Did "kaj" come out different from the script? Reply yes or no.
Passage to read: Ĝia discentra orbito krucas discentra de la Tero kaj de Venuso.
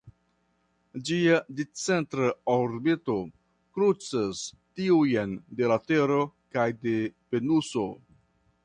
no